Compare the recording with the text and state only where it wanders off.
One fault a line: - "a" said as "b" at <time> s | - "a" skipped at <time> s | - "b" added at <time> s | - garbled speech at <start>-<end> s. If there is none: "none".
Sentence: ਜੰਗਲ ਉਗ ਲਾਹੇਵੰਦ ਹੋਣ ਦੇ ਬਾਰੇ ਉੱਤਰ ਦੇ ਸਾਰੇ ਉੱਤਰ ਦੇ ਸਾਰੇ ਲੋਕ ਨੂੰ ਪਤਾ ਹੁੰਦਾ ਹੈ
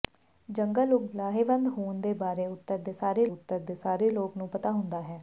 none